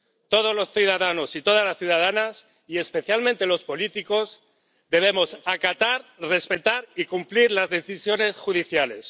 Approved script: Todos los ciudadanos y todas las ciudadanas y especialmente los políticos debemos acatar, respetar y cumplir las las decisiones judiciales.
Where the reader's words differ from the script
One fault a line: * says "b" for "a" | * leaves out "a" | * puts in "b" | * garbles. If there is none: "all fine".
* leaves out "las"